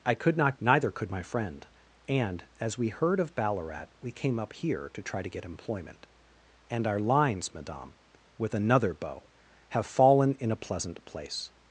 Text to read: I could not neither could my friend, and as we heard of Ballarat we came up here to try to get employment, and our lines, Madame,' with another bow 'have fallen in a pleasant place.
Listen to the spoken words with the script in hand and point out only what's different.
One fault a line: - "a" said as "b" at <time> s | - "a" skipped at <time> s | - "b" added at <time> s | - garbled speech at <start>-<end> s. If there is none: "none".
none